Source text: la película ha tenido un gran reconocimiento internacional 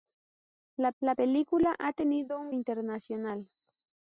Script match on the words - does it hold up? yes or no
no